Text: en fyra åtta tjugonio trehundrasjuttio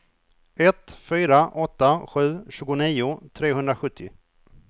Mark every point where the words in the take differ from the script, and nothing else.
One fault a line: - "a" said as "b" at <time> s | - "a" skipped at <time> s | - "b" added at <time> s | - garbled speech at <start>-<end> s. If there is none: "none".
- "en" said as "ett" at 0.6 s
- "sju" added at 2.1 s